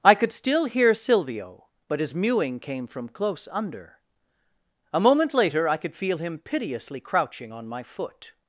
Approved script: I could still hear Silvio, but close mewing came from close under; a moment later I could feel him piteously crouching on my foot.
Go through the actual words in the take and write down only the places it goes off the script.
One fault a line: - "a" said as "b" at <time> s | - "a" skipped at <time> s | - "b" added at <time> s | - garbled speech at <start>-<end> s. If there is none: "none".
- "close" said as "his" at 2.0 s